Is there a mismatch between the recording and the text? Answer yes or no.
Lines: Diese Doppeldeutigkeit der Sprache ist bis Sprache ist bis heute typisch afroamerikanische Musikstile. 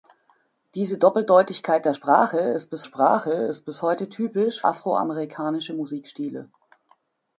no